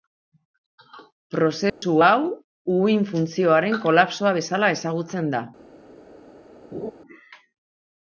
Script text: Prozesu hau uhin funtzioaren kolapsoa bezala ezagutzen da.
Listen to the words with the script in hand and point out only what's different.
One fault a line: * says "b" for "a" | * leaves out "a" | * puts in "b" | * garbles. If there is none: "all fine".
all fine